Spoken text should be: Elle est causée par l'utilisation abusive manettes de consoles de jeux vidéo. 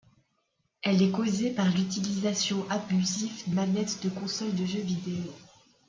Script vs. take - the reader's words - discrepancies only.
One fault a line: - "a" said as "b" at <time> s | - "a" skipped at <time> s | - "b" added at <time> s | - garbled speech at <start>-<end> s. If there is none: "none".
none